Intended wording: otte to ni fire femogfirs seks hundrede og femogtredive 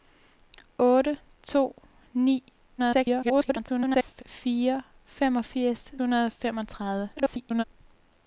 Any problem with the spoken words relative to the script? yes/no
yes